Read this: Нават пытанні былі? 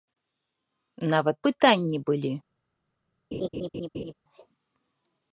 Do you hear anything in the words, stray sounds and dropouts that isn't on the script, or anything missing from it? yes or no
yes